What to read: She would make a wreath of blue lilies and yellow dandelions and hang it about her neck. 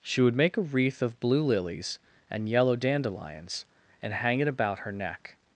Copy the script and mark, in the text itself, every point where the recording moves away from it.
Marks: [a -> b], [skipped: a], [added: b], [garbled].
She would make a wreath of blue lilies and yellow dandelions and hang it about her neck.